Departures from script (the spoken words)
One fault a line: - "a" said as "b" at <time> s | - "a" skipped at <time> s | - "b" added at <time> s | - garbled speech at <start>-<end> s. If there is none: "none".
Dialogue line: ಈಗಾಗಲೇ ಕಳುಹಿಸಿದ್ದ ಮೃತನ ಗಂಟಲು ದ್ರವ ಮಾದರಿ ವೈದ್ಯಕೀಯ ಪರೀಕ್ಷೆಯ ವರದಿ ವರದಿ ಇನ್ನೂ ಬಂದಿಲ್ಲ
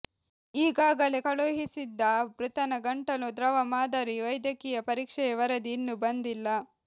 - "ವರದಿ" skipped at 5.7 s